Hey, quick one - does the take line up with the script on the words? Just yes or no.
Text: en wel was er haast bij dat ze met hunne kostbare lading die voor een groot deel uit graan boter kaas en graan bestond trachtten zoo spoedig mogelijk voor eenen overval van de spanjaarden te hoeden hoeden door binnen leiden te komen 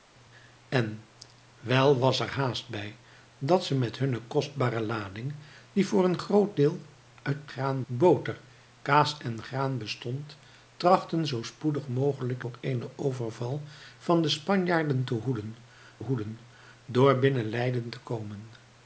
yes